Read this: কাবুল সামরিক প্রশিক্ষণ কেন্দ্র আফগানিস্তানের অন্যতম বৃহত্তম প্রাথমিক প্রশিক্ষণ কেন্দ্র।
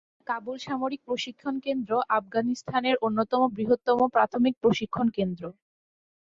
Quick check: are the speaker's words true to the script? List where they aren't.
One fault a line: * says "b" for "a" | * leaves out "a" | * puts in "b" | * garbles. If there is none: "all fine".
all fine